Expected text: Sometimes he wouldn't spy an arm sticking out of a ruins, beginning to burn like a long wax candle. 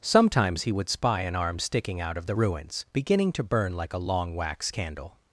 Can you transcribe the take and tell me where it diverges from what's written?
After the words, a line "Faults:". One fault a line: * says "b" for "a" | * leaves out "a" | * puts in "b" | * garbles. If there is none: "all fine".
Sometimes he would spy an arm sticking out of the ruins, beginning to burn like a long wax candle.
Faults:
* says "would" for "wouldn't"
* says "the" for "a"